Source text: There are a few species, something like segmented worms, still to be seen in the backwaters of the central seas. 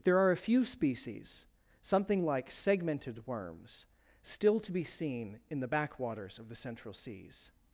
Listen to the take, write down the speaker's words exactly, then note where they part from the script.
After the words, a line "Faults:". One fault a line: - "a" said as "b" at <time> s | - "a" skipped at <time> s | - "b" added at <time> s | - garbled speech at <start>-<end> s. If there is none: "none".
There are a few species, something like segmented worms, still to be seen in the backwaters of the central seas.
Faults:
none